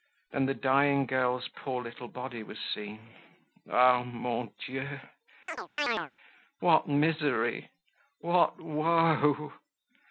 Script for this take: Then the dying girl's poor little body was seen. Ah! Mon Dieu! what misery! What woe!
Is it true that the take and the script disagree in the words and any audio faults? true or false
true